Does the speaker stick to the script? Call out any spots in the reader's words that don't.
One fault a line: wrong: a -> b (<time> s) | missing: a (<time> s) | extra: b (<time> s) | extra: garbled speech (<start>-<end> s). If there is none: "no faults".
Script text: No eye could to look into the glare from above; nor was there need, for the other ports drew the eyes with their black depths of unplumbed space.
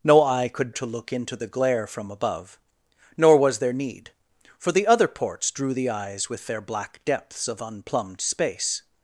no faults